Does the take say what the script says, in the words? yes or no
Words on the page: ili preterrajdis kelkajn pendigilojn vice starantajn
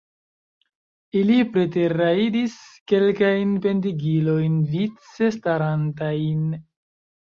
yes